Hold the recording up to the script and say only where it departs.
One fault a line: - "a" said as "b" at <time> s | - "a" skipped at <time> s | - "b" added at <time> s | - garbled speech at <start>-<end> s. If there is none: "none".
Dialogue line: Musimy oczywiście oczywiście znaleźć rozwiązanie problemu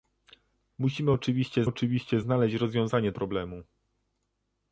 none